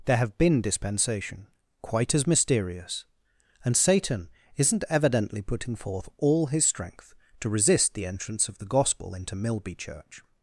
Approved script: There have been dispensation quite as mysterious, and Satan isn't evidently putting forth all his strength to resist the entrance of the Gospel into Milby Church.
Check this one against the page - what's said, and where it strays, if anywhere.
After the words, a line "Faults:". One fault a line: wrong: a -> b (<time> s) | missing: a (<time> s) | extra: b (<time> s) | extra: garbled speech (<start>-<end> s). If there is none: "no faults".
There have been dispensation quite as mysterious, and Satan isn't evidently putting forth all his strength to resist the entrance of the Gospel into Milby Church.
Faults:
no faults